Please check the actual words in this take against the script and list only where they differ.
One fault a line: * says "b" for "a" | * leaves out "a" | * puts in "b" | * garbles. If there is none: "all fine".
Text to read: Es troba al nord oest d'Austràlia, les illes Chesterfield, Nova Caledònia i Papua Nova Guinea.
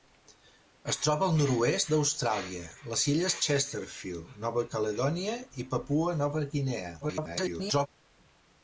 * garbles